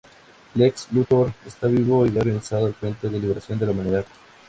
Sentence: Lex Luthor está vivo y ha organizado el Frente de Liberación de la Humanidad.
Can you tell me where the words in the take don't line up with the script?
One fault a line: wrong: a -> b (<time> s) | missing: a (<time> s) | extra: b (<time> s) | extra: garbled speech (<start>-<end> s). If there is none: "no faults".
no faults